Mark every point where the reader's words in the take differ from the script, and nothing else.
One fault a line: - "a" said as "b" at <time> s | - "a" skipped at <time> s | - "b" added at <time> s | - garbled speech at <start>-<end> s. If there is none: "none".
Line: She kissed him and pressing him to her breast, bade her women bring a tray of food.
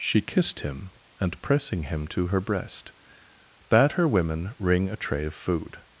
- "bring" said as "ring" at 4.6 s